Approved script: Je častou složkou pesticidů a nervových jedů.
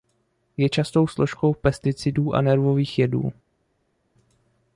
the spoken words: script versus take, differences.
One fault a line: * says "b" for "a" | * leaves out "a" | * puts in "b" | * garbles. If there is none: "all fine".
all fine